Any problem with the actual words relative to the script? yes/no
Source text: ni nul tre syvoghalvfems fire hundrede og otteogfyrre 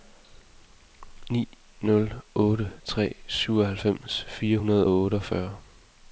yes